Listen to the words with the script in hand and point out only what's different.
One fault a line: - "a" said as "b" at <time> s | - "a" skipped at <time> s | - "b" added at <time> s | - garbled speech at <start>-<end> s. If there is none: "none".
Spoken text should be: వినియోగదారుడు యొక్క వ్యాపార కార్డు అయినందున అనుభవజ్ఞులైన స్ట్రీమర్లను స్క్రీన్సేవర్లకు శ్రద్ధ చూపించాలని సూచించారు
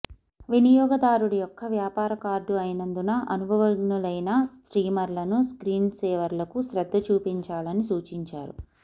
none